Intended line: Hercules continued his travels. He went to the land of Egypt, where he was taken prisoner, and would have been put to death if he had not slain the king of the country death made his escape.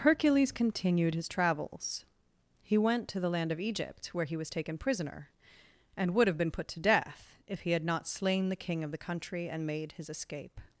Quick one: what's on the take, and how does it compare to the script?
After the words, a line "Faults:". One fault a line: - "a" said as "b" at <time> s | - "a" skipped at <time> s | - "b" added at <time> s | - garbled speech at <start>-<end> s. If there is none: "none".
Hercules continued his travels. He went to the land of Egypt, where he was taken prisoner, and would have been put to death if he had not slain the king of the country and made his escape.
Faults:
- "death" said as "and" at 9.5 s